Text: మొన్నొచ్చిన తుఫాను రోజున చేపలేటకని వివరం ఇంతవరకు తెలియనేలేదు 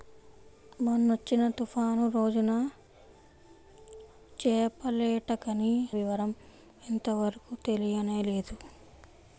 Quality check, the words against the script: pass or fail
pass